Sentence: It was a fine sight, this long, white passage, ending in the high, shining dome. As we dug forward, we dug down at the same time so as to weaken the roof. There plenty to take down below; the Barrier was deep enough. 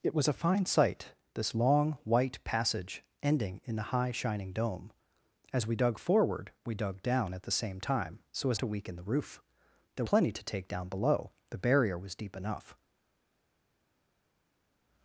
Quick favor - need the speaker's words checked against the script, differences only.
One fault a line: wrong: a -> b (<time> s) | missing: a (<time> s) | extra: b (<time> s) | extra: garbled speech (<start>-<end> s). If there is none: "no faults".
no faults